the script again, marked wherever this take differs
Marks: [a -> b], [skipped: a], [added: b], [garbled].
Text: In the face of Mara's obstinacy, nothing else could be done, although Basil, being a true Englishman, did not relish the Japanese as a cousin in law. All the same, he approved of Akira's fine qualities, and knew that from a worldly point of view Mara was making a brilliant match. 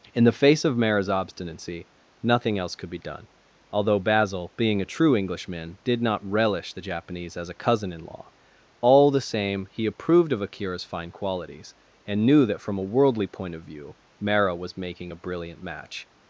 In the face of Mara's obstinacy, nothing else could be done, although Basil, being a true Englishman, did not relish the Japanese as a cousin in law. All the same, he approved of Akira's fine qualities, and knew that from a worldly point of view Mara was making a brilliant match.